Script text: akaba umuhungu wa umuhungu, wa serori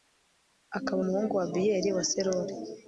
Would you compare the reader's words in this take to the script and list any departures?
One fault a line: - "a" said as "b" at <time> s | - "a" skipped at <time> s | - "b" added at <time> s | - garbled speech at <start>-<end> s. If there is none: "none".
- "umuhungu" said as "abiyeli" at 1.5 s